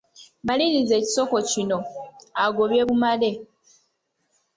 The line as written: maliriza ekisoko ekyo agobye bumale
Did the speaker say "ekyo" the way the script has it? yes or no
no